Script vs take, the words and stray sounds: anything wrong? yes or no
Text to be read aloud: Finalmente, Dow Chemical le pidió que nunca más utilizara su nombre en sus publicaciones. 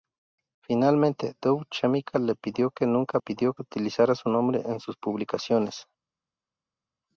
yes